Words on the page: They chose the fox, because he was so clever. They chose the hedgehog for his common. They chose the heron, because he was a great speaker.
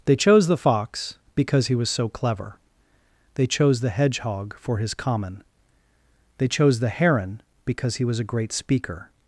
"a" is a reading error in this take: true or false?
false